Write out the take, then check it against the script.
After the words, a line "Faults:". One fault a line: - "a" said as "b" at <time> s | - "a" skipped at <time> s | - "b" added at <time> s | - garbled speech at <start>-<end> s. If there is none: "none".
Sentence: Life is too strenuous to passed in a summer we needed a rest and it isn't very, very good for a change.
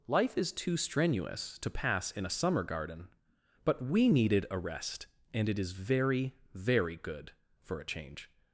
Life is too strenuous to pass in a summer garden; but we needed a rest and it is very, very good for a change.
Faults:
- "passed" said as "pass" at 1.7 s
- "garden but" added at 2.6 s
- "isn't" said as "is" at 5.6 s